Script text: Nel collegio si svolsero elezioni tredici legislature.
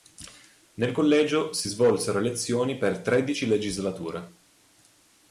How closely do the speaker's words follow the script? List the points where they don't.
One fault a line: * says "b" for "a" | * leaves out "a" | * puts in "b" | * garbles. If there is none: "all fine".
* puts in "per"